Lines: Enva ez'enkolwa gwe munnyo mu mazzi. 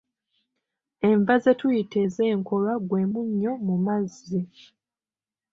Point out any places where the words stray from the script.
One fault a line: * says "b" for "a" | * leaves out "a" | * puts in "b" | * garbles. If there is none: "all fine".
* puts in "ze tuyita"